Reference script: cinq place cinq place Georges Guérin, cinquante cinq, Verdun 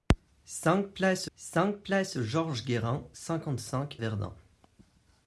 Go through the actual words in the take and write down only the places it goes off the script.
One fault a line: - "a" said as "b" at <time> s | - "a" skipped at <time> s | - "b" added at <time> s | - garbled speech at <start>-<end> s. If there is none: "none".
none